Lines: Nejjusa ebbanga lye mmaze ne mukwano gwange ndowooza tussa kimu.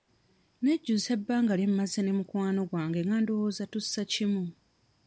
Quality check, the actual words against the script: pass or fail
fail